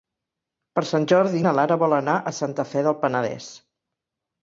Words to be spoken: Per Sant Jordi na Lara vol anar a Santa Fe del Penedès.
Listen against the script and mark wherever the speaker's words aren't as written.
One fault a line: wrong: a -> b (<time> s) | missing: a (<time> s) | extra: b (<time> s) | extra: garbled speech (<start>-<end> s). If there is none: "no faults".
no faults